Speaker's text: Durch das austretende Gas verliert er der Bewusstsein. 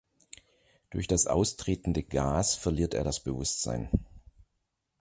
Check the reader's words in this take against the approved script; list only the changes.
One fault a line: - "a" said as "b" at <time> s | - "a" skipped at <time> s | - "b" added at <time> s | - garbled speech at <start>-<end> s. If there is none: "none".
- "der" said as "das" at 3.0 s